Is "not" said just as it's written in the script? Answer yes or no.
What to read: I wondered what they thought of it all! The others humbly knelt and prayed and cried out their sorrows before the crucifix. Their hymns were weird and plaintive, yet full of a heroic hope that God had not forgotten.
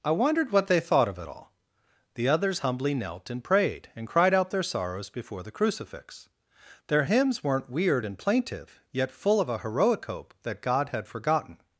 no